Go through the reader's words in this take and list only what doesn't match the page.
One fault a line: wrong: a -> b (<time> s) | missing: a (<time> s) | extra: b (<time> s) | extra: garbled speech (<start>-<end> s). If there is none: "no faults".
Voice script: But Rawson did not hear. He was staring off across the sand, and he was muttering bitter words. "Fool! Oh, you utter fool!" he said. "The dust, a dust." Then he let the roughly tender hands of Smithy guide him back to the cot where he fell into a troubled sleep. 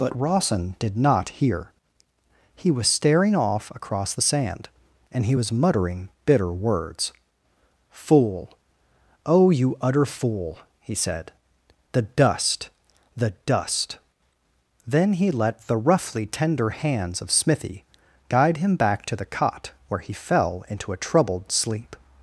wrong: a -> the (13.2 s)